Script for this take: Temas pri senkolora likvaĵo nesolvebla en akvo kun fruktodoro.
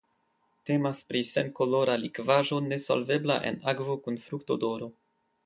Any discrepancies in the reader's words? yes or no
no